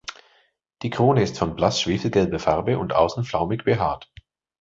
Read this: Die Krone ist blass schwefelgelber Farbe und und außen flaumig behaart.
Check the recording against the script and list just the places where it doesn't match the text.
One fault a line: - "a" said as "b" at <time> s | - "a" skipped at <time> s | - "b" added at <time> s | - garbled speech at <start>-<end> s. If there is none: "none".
- "von" added at 1.4 s
- "und" skipped at 2.9 s